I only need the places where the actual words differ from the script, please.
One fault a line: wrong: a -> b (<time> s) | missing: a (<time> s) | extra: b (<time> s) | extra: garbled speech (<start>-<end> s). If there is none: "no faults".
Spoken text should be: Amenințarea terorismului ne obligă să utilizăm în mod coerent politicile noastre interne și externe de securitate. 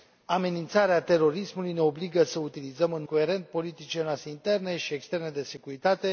missing: mod (3.0 s)